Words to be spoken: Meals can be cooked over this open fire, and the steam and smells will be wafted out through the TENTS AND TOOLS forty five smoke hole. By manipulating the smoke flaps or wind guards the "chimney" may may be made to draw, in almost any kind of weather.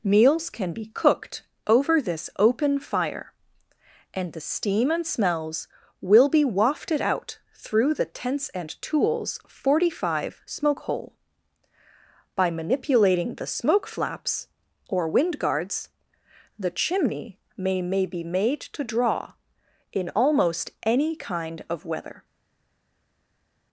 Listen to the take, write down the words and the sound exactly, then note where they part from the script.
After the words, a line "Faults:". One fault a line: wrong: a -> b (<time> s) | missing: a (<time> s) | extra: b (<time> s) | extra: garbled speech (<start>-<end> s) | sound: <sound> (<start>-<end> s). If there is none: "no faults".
Meals can be cooked over this open fire, and the steam and smells will be wafted out through the TENTS AND TOOLS forty five smoke hole. By manipulating the smoke flaps or wind guards the "chimney" may may be made to draw, in almost any kind of weather.
Faults:
no faults